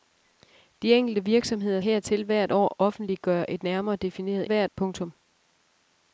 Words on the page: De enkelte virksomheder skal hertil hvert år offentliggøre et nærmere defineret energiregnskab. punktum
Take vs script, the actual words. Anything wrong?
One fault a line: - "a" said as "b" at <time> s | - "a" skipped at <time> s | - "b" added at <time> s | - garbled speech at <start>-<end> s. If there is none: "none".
- "skal" skipped at 1.8 s
- "energiregnskab" said as "hvert" at 4.5 s